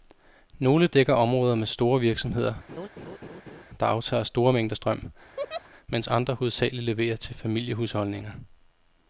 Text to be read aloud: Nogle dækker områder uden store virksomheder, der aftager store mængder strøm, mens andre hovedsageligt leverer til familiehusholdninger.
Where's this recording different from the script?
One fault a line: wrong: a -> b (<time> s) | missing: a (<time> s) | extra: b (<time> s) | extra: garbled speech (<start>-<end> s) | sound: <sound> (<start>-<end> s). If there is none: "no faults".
wrong: uden -> med (1.5 s)
sound: laugh (2.7-3.6 s)
sound: laugh (5.4-5.7 s)